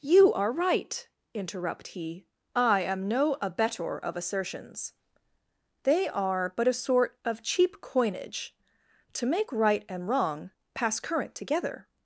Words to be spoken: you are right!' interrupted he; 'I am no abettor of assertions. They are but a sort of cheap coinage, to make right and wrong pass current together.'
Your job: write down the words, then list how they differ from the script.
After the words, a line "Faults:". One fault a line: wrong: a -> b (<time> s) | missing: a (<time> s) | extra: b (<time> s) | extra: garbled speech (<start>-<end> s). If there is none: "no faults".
you are right!' interrupt he; 'I am no abettor of assertions. They are but a sort of cheap coinage, to make right and wrong pass current together.'
Faults:
wrong: interrupted -> interrupt (1.3 s)